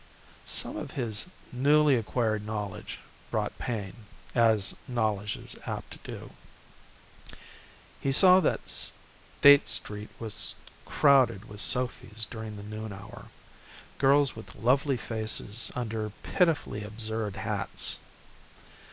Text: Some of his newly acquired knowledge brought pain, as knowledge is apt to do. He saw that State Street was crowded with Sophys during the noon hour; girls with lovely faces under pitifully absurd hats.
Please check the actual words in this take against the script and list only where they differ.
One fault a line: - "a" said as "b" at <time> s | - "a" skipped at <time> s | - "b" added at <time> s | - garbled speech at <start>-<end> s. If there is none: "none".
none